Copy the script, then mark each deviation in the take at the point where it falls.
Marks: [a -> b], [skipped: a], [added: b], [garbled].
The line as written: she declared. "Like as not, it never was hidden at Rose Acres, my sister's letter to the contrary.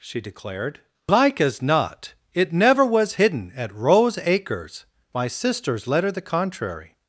she declared. "Like as not, it never was hidden at Rose Acres, my sister's letter [skipped: to] the contrary.